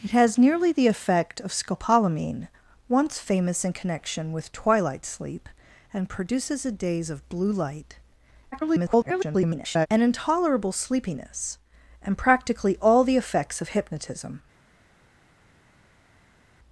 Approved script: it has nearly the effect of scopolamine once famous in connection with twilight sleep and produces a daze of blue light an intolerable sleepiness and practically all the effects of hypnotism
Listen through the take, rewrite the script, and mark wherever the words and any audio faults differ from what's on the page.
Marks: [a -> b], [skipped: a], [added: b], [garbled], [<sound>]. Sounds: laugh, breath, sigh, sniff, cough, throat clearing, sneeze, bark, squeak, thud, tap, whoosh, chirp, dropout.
it has nearly the effect of scopolamine once famous in connection with twilight sleep and produces a daze of blue light [garbled] an intolerable sleepiness and practically all the effects of hypnotism